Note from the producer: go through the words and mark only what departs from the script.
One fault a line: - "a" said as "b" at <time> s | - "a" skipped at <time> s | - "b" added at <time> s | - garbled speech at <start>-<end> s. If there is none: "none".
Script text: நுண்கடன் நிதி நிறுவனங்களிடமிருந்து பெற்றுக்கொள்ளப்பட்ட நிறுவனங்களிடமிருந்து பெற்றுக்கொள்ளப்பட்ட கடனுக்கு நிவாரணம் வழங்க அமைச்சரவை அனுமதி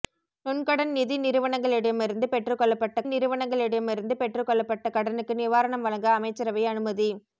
none